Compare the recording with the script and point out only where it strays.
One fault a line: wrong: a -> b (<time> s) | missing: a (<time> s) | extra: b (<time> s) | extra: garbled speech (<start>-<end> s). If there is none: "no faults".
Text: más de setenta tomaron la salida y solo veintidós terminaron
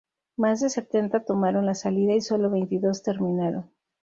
no faults